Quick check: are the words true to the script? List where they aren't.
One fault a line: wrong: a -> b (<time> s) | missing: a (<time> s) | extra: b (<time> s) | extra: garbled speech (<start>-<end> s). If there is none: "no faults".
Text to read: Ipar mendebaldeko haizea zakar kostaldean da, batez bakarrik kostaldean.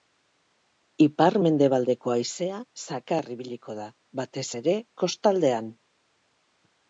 wrong: kostaldean -> ibiliko (3.3 s)
wrong: bakarrik -> ere (4.6 s)